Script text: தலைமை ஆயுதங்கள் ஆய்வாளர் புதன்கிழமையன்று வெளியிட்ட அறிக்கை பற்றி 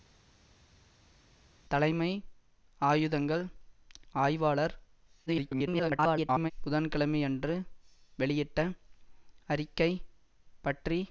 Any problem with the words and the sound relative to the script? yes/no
yes